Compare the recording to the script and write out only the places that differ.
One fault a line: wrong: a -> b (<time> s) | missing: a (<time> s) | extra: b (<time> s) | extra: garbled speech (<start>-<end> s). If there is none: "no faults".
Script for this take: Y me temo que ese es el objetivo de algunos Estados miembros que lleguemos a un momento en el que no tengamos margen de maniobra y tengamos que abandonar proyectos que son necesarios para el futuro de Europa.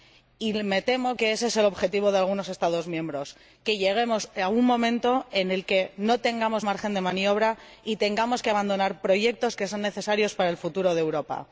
no faults